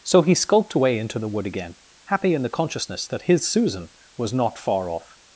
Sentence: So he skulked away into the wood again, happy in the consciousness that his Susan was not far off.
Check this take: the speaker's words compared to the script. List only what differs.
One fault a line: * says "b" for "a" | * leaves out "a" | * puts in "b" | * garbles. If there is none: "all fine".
all fine